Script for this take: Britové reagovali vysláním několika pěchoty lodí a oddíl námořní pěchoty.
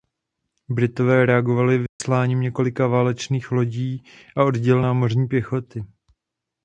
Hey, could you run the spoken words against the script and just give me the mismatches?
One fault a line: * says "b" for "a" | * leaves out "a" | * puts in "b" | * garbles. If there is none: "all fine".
* says "válečných" for "pěchoty"